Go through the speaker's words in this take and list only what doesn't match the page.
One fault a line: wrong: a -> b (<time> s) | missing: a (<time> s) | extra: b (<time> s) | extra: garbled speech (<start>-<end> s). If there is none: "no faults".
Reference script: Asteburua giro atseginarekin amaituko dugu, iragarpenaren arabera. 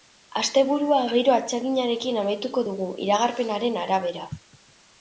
no faults